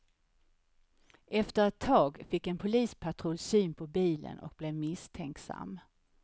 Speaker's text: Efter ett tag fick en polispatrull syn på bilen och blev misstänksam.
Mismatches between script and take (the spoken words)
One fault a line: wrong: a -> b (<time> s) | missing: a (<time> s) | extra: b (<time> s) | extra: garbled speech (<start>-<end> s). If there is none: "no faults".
no faults